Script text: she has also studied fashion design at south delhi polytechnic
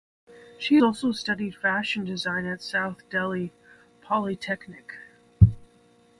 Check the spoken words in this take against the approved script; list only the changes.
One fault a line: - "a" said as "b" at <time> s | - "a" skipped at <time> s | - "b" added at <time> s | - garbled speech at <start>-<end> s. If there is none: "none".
- "has" skipped at 0.8 s